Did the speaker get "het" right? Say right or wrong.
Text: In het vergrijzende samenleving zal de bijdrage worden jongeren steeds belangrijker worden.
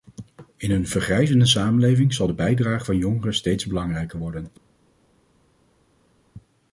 wrong